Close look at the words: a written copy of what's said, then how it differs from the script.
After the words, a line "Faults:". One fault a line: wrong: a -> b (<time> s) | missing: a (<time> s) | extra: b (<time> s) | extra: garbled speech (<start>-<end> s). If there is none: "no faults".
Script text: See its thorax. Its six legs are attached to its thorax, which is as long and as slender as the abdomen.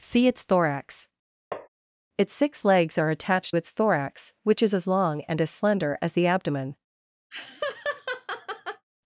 See its thorax. Its six legs are attached its thorax, which is as long and as slender as the abdomen.
Faults:
missing: to (3.5 s)